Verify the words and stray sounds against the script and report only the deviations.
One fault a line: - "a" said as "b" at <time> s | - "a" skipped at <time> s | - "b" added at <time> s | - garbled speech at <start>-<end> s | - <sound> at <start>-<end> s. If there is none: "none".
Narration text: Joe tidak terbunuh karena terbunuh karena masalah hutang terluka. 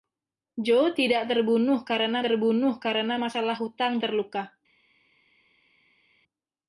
none